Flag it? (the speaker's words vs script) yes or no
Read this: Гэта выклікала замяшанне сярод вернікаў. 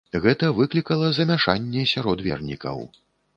no